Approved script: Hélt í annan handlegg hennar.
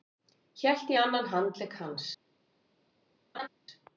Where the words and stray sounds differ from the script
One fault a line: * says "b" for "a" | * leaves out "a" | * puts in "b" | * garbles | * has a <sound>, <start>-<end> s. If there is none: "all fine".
* says "hans" for "hennar"
* has a laugh, 3.3-3.5 s